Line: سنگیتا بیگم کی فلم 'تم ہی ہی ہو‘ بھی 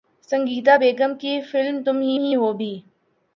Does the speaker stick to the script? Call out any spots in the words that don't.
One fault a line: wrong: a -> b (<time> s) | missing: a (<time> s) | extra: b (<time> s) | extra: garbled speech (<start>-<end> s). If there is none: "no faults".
no faults